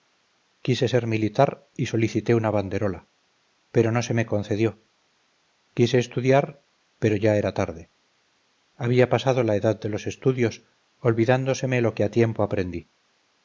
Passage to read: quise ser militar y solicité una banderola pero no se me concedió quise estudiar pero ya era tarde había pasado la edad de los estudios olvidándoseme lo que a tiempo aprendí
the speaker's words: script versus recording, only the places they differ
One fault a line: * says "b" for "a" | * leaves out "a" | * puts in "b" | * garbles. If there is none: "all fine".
all fine